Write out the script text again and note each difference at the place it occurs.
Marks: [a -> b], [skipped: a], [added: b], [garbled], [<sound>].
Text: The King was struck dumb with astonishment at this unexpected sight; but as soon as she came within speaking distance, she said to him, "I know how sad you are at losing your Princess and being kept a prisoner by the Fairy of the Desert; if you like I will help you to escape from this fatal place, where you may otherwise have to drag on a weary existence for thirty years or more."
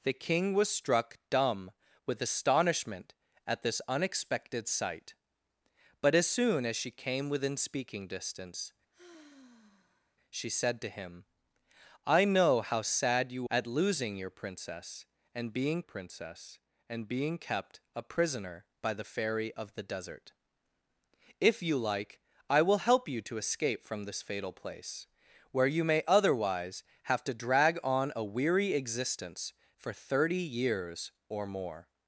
The King was struck dumb with astonishment at this unexpected sight; but as soon as she came within speaking distance, [sigh] she said to him, "I know how sad you [skipped: are] at losing your Princess and being [added: Princess and being] kept a prisoner by the Fairy of the Desert; if you like I will help you to escape from this fatal place, where you may otherwise have to drag on a weary existence for thirty years or more."